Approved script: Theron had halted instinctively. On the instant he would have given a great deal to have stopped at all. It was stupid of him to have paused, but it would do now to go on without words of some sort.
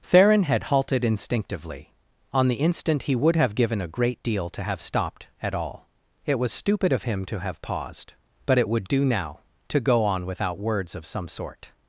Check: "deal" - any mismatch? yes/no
no